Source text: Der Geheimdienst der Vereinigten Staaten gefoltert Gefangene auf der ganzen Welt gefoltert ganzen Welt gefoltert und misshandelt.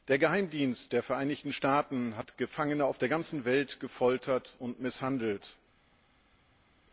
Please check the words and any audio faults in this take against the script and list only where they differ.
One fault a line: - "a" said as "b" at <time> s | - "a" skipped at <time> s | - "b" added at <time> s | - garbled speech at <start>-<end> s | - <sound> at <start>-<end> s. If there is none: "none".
- "gefoltert" said as "hat" at 2.2 s
- "ganzen Welt gefoltert" skipped at 4.6 s